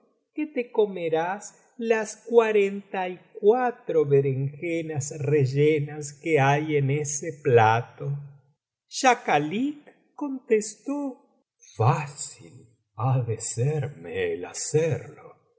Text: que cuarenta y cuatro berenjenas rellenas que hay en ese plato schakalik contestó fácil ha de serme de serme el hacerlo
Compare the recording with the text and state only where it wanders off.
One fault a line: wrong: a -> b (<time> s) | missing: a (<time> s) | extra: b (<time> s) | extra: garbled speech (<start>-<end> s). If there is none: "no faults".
extra: te comerás las (0.5 s)
missing: de serme (14.3 s)